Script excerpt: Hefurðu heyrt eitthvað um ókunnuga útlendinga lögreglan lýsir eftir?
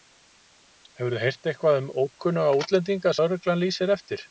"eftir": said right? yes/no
yes